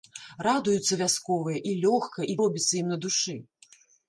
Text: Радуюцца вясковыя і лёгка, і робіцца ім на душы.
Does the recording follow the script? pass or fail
pass